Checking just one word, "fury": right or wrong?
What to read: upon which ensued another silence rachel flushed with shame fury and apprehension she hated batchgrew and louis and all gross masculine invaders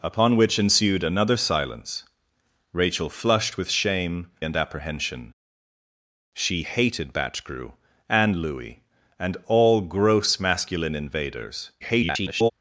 wrong